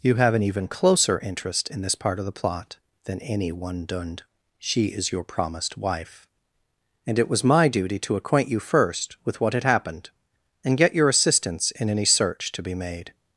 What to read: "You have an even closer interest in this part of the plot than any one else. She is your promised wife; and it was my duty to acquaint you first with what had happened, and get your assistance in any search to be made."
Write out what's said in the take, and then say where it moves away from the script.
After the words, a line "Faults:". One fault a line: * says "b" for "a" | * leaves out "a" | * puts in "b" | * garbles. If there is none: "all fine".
"You have an even closer interest in this part of the plot than any one dund. She is your promised wife; and it was my duty to acquaint you first with what had happened, and get your assistance in any search to be made."
Faults:
* says "dund" for "else"